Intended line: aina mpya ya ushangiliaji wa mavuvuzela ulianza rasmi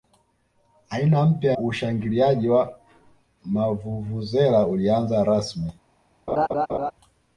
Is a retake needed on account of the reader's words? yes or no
yes